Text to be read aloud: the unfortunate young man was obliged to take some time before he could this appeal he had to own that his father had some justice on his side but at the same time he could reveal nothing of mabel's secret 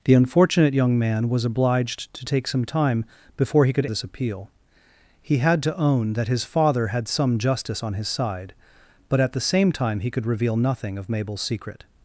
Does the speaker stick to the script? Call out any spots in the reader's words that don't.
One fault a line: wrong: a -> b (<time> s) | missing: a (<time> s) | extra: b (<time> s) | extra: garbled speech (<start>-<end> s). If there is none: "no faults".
no faults